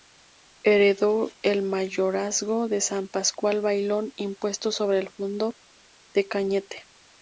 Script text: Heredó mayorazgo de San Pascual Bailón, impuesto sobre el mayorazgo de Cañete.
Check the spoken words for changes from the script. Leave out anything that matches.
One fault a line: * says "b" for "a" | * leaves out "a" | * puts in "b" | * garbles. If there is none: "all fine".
* puts in "el"
* says "fundo" for "mayorazgo"